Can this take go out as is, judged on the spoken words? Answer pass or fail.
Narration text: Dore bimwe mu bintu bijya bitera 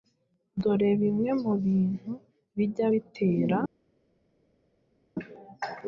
pass